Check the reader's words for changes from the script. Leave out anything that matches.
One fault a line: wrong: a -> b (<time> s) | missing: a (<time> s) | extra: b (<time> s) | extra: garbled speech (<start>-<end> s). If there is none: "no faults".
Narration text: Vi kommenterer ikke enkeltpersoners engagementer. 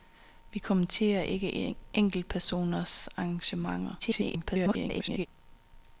extra: garbled speech (4.0-5.3 s)